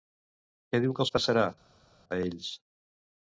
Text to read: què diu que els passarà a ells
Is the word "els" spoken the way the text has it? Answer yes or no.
yes